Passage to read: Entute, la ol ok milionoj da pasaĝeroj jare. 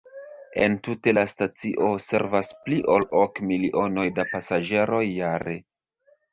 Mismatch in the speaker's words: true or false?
true